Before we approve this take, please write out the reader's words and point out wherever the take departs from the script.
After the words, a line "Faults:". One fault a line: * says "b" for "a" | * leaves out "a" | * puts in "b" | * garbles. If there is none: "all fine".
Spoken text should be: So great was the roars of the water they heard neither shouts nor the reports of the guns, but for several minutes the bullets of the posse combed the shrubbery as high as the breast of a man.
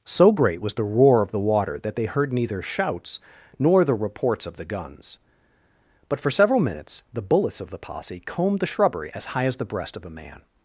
So great was the roar of the water that they heard neither shouts nor the reports of the guns, but for several minutes the bullets of the posse combed the shrubbery as high as the breast of a man.
Faults:
* says "roar" for "roars"
* puts in "that"